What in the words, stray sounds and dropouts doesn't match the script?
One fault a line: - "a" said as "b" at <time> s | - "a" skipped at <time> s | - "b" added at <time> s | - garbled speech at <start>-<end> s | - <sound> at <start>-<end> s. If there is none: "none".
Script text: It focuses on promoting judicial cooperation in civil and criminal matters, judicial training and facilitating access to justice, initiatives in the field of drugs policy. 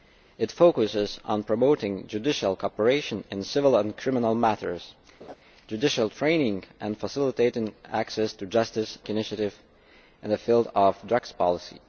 - laugh at 5.2-5.4 s